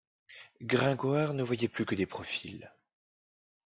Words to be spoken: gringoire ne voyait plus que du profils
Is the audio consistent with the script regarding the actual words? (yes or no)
no